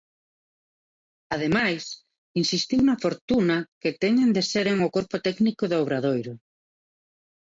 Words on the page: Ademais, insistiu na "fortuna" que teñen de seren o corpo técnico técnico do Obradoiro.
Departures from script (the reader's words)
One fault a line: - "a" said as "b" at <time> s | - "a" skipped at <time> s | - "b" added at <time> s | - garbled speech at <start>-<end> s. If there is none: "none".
- "técnico" skipped at 5.6 s